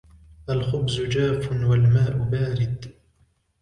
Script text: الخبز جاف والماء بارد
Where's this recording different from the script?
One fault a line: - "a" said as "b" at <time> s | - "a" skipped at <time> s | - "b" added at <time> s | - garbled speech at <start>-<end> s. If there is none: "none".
none